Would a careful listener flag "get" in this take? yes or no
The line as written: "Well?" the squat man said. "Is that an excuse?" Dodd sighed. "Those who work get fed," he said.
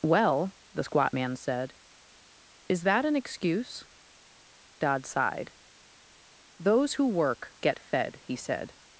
no